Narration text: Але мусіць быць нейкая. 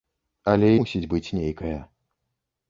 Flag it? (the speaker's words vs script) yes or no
no